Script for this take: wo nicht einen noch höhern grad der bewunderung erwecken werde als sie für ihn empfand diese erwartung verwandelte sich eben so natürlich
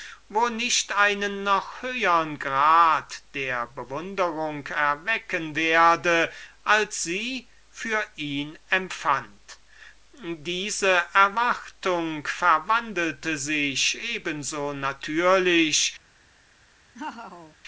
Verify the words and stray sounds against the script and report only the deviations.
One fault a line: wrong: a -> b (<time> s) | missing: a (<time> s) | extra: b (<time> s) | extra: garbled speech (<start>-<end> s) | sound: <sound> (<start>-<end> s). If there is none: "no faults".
sound: laugh (16.9-17.6 s)